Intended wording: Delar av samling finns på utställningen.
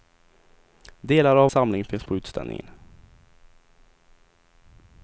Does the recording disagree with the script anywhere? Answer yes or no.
no